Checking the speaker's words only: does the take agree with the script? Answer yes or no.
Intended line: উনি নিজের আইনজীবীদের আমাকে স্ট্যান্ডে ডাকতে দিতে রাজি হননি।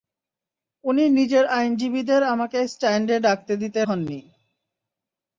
no